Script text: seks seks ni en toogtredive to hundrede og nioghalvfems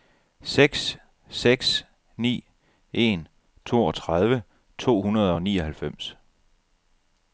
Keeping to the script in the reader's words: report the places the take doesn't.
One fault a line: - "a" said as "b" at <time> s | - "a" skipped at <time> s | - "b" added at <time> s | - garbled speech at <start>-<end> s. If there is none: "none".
none